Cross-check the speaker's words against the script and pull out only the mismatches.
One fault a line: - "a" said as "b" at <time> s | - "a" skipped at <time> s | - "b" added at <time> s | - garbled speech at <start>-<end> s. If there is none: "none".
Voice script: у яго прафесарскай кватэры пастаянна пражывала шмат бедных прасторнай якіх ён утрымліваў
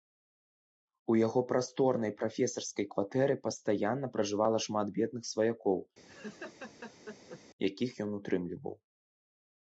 - "прасторнай" added at 1.5 s
- "прасторнай" said as "сваякоў" at 5.4 s